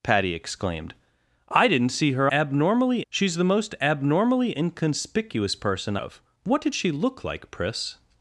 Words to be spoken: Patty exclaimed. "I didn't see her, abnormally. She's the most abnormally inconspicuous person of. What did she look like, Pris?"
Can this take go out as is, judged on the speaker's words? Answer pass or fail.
pass